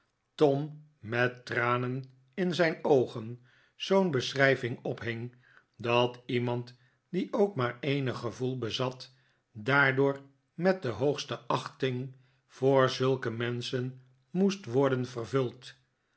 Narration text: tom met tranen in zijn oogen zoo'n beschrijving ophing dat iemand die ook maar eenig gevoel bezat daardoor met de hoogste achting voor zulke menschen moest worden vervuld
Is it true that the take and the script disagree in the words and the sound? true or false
false